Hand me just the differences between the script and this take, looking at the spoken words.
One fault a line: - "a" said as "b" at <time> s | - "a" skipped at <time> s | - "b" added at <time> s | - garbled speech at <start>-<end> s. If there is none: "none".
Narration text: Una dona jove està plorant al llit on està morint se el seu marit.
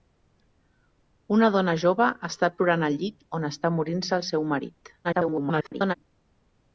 - garbled speech at 5.0-5.9 s